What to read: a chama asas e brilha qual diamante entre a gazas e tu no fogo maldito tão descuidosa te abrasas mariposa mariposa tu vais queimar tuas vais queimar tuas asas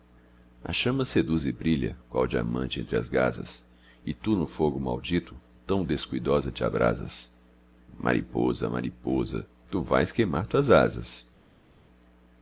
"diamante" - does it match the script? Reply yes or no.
yes